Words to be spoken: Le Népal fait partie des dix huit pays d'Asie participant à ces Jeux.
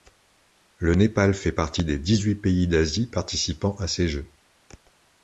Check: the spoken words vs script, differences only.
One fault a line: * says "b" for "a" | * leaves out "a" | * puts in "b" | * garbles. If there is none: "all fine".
all fine